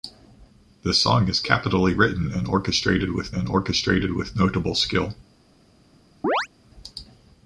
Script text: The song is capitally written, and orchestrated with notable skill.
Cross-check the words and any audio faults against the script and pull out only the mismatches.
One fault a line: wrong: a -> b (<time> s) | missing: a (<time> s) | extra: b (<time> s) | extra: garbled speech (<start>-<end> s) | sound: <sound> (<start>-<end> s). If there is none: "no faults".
extra: and orchestrated with (3.3 s)
sound: chirp (6.2-6.5 s)